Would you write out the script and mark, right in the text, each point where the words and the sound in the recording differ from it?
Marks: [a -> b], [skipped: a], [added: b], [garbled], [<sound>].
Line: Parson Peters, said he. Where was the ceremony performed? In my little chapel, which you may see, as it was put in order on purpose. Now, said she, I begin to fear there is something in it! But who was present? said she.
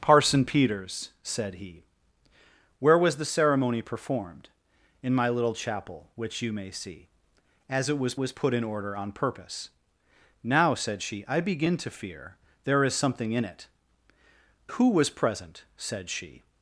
Parson Peters, said he. Where was the ceremony performed? In my little chapel, which you may see, as it was [added: was] put in order on purpose. Now, said she, I begin to fear there is something in it! [skipped: But] who was present? said she.